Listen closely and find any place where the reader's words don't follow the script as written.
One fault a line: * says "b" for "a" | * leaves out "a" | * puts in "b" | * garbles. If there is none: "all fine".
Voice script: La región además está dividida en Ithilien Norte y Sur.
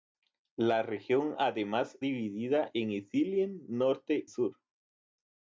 * leaves out "está"
* leaves out "y"